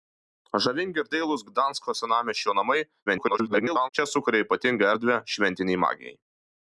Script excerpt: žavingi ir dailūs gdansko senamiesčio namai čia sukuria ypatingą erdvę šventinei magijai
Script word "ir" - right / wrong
right